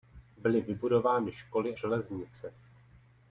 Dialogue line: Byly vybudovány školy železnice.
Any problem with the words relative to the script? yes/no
no